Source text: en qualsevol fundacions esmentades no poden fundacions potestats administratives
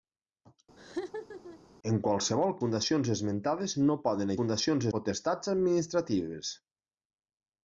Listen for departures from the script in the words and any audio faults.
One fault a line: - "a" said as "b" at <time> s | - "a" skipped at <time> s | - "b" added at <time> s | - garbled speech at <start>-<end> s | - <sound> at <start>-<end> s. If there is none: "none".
- laugh at 0.8-1.6 s